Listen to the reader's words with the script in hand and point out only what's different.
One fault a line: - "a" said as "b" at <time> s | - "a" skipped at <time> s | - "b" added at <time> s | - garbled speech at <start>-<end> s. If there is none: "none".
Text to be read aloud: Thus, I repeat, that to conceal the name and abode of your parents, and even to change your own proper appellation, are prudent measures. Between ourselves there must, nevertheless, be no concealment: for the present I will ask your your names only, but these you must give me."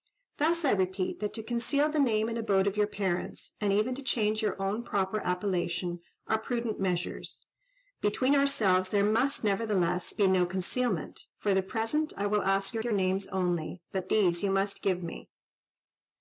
none